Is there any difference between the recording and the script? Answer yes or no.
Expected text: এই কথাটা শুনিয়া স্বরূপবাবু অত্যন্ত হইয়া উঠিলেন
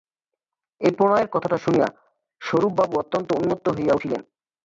yes